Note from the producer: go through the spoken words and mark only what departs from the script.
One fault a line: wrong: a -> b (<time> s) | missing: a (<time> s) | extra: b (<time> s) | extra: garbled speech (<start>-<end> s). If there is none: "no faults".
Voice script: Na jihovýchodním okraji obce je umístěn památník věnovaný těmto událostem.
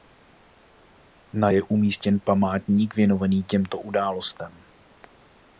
missing: jihovýchodním okraji obce (1.5 s)